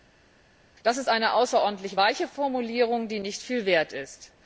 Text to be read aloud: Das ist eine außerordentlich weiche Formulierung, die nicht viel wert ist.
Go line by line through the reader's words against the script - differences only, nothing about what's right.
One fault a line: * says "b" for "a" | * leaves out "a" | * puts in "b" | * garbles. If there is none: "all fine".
all fine